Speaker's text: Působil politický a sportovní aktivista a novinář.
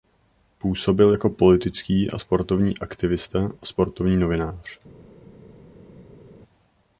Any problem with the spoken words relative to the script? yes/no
yes